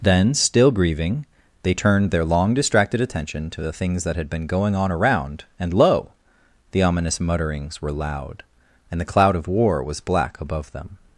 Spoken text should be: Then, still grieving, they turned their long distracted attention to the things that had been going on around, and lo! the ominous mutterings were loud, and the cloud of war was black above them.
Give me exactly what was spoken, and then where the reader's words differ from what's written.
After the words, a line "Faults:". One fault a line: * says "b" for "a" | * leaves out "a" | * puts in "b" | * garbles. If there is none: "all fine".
Then, still grieving, they turned their long distracted attention to the things that had been going on around, and lo! the ominous mutterings were loud, and the cloud of war was black above them.
Faults:
all fine